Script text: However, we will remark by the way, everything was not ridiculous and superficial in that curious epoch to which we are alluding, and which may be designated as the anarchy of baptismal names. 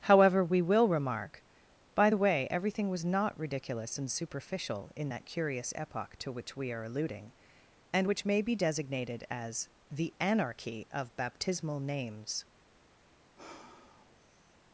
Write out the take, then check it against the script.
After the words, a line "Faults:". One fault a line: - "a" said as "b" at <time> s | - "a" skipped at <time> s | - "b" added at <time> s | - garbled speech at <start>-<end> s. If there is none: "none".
However, we will remark by the way, everything was not ridiculous and superficial in that curious epoch to which we are alluding, and which may be designated as the anarchy of baptismal names.
Faults:
none